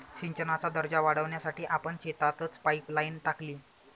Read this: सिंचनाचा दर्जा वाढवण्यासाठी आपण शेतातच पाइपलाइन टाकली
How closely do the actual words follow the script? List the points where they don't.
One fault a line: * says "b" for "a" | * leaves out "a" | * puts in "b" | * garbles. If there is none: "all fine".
all fine